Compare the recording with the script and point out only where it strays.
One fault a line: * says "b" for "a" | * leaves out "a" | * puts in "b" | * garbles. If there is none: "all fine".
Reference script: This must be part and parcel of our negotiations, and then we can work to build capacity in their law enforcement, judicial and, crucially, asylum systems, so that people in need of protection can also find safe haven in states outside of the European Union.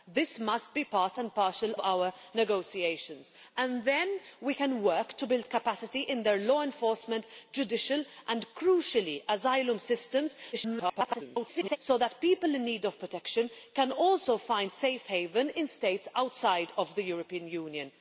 * leaves out "of"
* garbles